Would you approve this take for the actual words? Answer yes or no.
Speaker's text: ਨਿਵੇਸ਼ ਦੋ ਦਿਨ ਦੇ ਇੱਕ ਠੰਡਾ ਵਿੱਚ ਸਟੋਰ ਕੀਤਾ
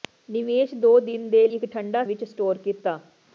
yes